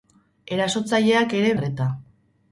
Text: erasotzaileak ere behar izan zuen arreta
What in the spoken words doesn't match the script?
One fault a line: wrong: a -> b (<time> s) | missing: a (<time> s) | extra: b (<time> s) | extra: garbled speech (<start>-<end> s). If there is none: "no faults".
missing: behar izan zuen (1.5 s)